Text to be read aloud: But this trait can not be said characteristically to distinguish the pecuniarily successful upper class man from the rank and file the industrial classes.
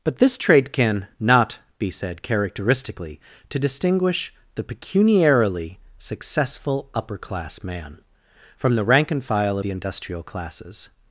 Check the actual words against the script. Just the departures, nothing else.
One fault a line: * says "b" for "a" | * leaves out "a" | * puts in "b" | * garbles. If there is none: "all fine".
all fine